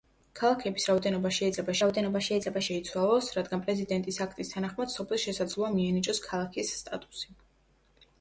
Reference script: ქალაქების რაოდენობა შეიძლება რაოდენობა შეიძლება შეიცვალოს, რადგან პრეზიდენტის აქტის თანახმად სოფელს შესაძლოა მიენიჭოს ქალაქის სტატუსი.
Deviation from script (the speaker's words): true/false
false